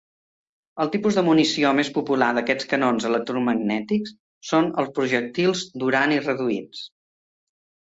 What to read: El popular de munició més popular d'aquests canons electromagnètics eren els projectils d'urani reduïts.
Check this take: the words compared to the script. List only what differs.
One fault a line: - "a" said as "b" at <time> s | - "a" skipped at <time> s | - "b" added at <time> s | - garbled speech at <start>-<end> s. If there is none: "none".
- "popular" said as "tipus" at 0.9 s
- "eren" said as "són" at 4.5 s